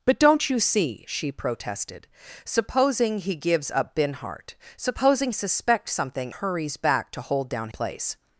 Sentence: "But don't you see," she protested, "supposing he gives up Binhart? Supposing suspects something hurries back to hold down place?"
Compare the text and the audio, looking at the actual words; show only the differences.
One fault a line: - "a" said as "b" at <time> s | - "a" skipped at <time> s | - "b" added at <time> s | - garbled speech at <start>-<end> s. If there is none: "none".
none